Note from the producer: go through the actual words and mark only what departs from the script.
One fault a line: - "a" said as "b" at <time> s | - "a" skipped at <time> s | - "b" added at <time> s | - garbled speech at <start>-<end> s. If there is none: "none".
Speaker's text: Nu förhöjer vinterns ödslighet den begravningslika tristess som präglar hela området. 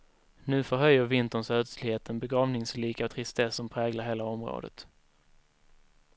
none